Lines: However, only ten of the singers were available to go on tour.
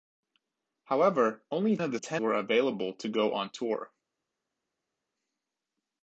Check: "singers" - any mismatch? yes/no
yes